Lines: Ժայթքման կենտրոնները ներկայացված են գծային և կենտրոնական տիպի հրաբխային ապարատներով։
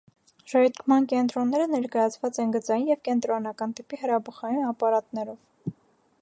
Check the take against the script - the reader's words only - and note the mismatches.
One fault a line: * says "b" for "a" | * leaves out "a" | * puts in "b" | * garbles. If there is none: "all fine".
all fine